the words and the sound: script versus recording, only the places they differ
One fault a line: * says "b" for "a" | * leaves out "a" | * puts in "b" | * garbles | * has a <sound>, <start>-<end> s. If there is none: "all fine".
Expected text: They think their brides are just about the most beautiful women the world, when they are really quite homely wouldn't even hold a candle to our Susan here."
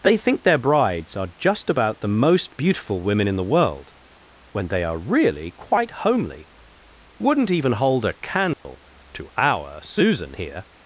* puts in "in"
* has a dropout, 8.5-8.7 s